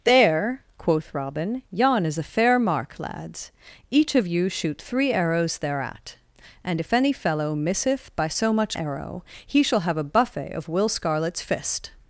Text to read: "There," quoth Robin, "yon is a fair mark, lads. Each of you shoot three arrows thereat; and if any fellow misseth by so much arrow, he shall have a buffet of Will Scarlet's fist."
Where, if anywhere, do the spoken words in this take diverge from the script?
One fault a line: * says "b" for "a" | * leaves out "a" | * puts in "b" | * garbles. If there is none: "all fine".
all fine